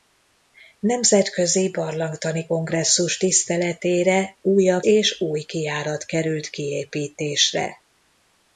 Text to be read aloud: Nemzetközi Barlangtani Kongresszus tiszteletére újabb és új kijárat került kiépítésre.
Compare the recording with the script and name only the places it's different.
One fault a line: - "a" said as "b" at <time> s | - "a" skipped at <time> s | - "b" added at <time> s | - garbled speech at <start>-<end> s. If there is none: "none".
none